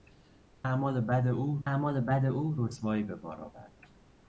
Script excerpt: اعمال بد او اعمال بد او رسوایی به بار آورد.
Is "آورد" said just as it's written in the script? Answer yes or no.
yes